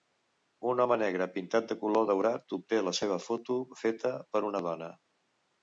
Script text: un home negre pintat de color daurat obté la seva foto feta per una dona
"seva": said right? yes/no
yes